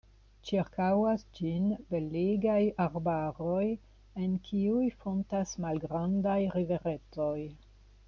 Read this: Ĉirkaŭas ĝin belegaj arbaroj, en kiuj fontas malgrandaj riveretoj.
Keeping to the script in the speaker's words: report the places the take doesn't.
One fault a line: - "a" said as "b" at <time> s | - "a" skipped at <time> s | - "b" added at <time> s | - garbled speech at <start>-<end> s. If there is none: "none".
none